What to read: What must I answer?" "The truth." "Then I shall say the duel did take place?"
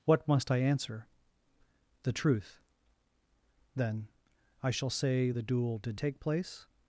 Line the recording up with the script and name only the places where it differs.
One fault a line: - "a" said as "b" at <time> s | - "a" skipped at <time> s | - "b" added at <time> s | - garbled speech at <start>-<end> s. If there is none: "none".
none